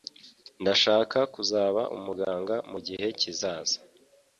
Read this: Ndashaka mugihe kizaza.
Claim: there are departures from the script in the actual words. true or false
true